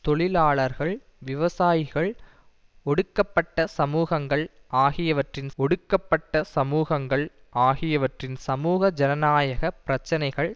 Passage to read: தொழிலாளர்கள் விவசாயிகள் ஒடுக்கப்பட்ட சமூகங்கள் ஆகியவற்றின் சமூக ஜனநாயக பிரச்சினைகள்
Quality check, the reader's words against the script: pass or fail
fail